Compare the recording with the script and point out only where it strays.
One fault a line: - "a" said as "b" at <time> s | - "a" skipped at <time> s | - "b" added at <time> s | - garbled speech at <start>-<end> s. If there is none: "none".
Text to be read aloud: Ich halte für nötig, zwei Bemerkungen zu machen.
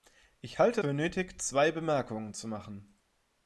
none